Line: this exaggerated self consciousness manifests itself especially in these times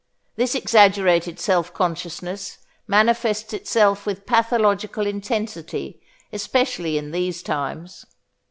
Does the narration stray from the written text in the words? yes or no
yes